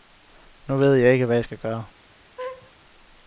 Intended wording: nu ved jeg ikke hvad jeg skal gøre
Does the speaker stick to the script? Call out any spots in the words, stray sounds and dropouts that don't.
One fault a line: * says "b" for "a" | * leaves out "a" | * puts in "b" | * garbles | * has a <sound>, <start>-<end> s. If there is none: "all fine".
* has a laugh, 2.4-2.7 s